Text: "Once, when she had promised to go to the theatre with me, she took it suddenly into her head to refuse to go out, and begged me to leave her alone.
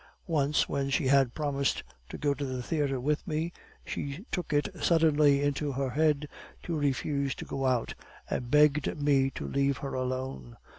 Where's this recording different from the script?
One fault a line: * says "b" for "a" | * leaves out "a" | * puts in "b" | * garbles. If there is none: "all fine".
all fine